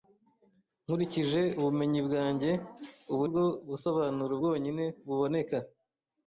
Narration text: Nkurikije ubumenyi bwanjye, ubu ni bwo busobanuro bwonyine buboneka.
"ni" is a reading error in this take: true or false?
true